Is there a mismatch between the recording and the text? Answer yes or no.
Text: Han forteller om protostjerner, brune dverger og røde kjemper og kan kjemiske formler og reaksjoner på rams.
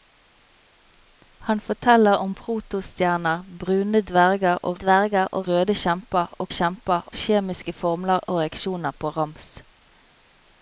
yes